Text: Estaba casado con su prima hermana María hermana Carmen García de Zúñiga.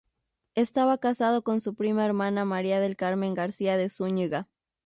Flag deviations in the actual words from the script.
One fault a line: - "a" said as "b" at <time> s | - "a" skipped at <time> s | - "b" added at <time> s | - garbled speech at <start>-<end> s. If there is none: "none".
- "hermana" said as "del" at 2.8 s